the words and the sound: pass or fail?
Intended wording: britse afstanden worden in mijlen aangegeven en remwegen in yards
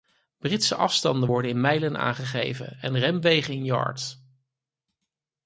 pass